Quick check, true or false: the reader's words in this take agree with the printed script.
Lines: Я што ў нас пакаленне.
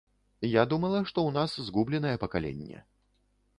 false